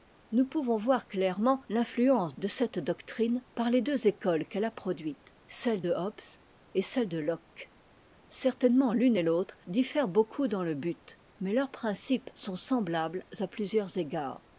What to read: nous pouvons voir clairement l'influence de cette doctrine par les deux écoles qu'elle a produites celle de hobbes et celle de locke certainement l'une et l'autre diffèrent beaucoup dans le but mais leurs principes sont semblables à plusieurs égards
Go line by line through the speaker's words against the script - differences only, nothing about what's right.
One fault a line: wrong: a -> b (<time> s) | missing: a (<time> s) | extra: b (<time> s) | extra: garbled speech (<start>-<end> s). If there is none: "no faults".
no faults